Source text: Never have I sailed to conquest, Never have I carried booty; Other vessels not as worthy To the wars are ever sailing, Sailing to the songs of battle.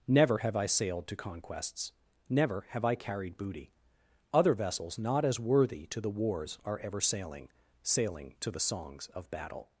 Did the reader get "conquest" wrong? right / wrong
wrong